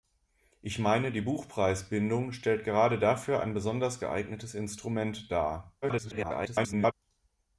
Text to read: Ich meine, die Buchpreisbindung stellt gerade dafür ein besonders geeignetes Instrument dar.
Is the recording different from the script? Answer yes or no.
yes